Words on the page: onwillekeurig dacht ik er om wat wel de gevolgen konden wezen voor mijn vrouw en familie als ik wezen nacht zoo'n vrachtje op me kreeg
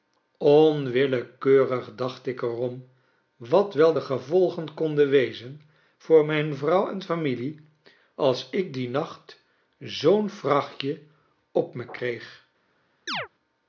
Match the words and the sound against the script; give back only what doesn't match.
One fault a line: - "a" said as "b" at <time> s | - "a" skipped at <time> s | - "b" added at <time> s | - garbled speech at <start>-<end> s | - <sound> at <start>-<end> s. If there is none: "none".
- "wezen" said as "dien" at 8.7 s
- chirp at 13.1-13.3 s